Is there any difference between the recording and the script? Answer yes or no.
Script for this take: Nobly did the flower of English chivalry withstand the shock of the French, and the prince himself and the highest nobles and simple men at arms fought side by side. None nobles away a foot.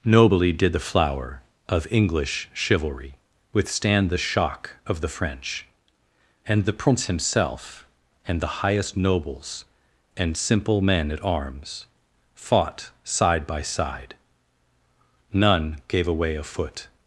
yes